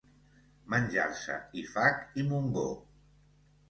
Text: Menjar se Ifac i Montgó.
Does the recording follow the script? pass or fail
pass